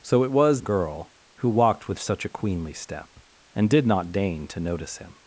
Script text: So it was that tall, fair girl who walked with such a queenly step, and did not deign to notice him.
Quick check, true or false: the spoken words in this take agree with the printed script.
false